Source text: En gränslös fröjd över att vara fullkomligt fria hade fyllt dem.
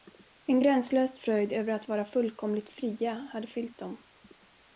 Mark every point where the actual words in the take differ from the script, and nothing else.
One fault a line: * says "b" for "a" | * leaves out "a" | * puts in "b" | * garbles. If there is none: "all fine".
all fine